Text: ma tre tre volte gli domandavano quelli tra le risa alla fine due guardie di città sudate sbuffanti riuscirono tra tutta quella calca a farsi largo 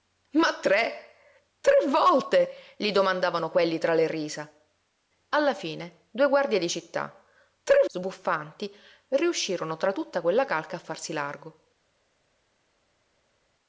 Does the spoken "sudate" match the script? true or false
false